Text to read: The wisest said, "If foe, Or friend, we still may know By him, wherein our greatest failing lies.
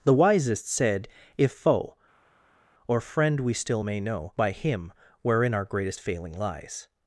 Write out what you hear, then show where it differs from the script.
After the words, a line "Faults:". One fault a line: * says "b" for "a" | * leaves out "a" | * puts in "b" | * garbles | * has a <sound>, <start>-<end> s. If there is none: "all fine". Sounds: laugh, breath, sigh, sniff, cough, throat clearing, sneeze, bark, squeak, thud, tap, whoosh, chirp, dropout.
The wisest said, "If foe, Or friend, we still may know By him, wherein our greatest failing lies.
Faults:
all fine